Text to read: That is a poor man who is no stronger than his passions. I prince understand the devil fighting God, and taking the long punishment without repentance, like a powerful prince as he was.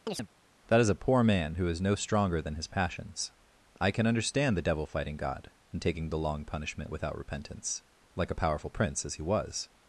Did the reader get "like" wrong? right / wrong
right